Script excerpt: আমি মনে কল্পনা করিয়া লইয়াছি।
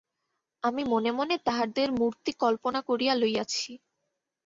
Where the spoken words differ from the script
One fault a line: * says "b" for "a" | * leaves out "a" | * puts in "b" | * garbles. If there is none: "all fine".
* puts in "মনে তাহাদের মূর্তি"